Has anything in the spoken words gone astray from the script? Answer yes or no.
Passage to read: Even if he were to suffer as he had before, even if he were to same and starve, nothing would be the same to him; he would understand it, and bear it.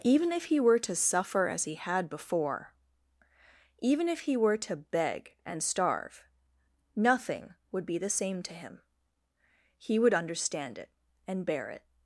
yes